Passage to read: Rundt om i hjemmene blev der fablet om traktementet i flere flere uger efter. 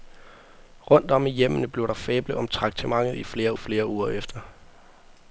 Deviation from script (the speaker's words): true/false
false